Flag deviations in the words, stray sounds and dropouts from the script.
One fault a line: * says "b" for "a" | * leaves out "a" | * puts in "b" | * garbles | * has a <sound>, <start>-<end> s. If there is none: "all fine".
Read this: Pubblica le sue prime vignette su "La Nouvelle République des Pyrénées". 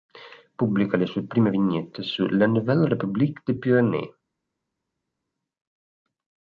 all fine